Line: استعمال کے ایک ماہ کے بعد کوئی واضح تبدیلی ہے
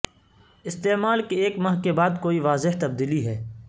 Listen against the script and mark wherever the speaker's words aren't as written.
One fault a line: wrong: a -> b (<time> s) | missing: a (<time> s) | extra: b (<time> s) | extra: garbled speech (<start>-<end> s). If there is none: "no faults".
no faults